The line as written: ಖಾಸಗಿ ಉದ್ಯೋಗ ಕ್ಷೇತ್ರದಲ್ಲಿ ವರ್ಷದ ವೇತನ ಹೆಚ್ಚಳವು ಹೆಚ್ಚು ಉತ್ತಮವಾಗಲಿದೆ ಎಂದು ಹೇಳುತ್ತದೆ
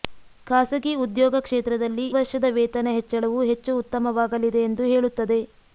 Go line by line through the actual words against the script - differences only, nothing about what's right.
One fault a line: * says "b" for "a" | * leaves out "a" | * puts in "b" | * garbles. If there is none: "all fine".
all fine